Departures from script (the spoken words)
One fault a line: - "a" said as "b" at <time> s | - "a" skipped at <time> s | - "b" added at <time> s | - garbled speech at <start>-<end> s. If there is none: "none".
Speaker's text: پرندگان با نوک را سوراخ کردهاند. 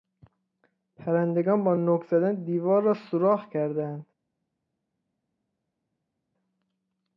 - "زدن دیوار" added at 2.0 s